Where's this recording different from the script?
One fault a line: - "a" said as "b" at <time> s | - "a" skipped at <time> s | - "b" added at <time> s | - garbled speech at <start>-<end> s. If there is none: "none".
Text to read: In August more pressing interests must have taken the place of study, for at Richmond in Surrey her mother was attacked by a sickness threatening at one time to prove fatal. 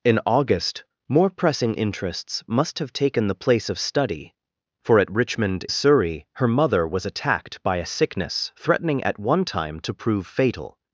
- "in" skipped at 5.7 s